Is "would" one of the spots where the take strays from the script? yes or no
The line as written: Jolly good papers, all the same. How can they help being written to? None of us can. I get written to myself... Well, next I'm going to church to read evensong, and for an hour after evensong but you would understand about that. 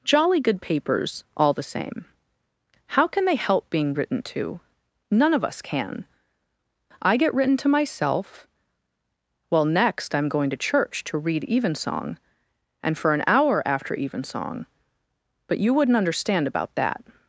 yes